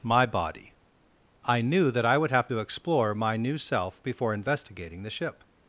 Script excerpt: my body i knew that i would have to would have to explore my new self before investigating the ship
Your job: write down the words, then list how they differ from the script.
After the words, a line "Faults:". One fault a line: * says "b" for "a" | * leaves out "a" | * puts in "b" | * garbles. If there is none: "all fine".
my body i knew that i would have to explore my new self before investigating the ship
Faults:
* leaves out "would have to"